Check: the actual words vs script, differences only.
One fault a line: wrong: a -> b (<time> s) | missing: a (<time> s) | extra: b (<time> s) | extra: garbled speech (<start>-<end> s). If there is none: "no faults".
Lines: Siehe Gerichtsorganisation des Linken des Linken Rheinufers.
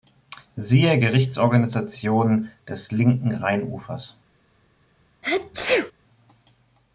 missing: des Linken (3.3 s)